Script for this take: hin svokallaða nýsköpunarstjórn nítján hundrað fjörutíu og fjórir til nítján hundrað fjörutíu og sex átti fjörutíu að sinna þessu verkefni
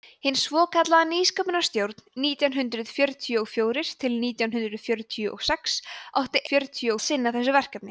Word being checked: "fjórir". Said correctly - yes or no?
yes